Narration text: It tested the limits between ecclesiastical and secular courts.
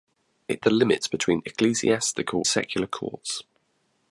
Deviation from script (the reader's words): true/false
true